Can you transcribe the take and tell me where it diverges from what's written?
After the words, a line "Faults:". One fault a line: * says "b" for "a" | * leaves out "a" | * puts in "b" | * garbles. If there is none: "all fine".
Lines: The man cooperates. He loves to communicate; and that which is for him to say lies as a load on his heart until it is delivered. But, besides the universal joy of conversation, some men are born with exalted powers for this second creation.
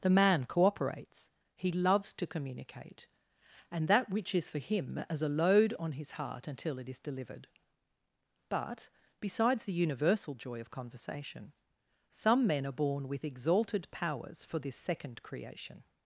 The man cooperates. He loves to communicate; and that which is for him as a load on his heart until it is delivered. But, besides the universal joy of conversation, some men are born with exalted powers for this second creation.
Faults:
* leaves out "to say lies"